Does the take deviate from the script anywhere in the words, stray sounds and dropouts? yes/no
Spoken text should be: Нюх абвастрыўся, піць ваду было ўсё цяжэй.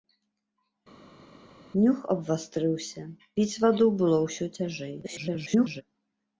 yes